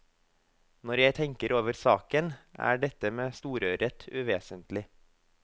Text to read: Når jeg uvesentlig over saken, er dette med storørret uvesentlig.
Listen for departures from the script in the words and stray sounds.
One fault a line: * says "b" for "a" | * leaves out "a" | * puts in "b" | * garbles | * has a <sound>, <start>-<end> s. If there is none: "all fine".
* says "tenker" for "uvesentlig"